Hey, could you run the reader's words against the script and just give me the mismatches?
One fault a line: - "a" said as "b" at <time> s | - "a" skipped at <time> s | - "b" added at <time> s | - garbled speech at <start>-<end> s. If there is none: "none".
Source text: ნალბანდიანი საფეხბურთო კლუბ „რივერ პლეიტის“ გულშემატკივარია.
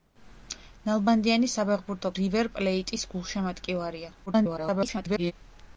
- "კლუბ" skipped at 2.1 s
- garbled speech at 4.3-5.3 s